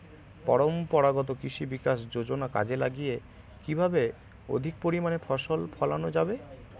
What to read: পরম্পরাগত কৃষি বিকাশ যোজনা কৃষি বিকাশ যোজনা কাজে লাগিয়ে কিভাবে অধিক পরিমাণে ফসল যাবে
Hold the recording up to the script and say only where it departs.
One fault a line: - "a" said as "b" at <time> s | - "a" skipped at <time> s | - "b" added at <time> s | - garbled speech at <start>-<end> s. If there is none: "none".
- "কৃষি বিকাশ যোজনা" skipped at 2.5 s
- "ফলানো" added at 5.8 s